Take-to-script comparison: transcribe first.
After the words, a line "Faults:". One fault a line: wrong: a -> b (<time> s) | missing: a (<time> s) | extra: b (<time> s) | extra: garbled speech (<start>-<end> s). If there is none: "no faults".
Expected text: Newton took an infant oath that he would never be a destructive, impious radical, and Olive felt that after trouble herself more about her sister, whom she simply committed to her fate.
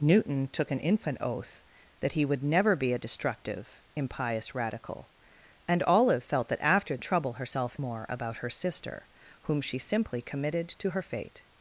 Newton took an infant oath that he would never be a destructive, impious radical, and Olive felt that after trouble herself more about her sister, whom she simply committed to her fate.
Faults:
no faults